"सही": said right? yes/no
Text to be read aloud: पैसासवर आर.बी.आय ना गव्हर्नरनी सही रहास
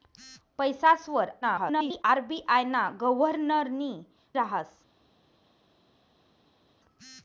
no